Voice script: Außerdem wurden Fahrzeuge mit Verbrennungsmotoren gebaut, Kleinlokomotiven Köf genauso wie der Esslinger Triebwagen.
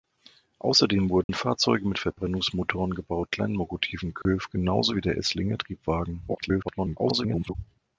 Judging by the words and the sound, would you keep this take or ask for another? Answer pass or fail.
fail